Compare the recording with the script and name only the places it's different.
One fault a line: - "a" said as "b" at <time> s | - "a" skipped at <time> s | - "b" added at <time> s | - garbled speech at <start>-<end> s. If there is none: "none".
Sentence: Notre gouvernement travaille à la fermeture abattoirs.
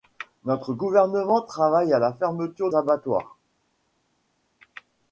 none